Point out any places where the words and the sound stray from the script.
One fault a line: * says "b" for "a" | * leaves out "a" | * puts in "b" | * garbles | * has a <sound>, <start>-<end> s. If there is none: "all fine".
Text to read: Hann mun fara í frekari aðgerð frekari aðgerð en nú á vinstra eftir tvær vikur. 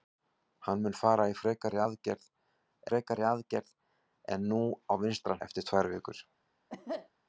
* has a cough, 6.7-7.1 s